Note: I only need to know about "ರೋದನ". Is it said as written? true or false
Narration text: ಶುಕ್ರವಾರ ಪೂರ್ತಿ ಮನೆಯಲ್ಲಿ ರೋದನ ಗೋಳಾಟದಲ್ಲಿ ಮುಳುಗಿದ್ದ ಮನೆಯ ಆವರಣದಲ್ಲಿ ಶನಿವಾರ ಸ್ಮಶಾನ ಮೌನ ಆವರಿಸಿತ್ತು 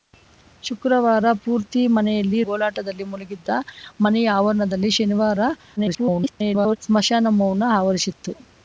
false